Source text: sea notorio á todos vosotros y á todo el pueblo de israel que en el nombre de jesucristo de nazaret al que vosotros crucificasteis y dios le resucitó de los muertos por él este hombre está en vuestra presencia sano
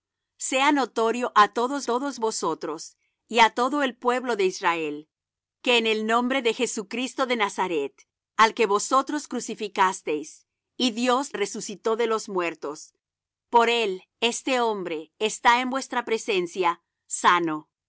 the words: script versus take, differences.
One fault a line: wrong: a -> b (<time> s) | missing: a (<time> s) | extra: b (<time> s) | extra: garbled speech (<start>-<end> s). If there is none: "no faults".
extra: todos (1.9 s)
missing: le (11.3 s)